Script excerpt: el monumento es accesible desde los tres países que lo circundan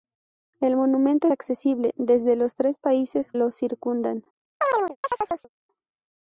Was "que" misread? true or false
true